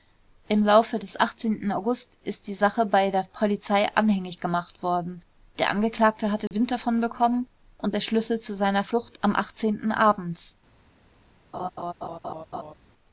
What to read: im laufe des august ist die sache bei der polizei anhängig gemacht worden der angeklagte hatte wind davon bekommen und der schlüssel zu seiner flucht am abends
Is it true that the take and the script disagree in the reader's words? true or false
false